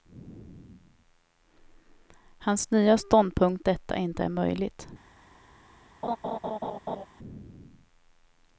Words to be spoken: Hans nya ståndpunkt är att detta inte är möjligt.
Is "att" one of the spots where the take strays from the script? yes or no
yes